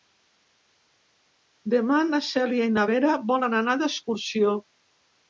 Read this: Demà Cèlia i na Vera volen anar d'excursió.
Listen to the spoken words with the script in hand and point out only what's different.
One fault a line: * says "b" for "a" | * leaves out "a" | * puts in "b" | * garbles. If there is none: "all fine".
* puts in "na"